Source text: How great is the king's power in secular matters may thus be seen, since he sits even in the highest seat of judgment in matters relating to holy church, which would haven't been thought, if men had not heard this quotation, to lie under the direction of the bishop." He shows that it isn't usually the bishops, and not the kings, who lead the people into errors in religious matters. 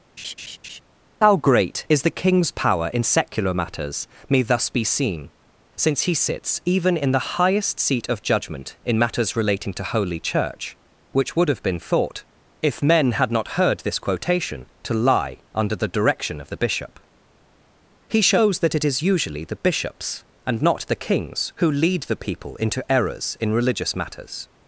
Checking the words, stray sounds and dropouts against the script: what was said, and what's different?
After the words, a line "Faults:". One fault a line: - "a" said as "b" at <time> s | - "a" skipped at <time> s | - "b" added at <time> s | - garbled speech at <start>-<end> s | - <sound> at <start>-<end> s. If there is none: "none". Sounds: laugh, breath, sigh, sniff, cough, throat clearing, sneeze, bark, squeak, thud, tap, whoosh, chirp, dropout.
How great is the king's power in secular matters may thus be seen, since he sits even in the highest seat of judgment in matters relating to holy church, which would have been thought, if men had not heard this quotation, to lie under the direction of the bishop." He shows that it is usually the bishops, and not the kings, who lead the people into errors in religious matters.
Faults:
- laugh at 0.2-0.8 s
- "haven't" said as "have" at 11.5 s
- "isn't" said as "is" at 18.8 s